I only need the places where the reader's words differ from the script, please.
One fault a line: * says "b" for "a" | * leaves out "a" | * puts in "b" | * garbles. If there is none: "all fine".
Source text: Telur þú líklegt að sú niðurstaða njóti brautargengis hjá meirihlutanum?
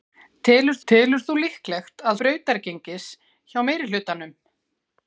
* puts in "telur"
* leaves out "sú niðurstaða njóti"